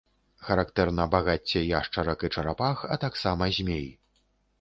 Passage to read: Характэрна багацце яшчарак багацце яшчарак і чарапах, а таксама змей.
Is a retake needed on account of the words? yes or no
yes